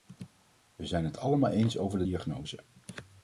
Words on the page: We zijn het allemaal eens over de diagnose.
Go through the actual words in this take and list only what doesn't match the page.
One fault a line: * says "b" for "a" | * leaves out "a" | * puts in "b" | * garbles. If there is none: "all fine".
all fine